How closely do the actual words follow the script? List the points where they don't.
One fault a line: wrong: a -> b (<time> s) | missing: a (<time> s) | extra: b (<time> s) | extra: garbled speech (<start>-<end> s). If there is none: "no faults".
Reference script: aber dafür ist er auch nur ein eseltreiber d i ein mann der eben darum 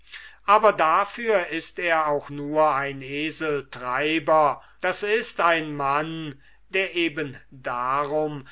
no faults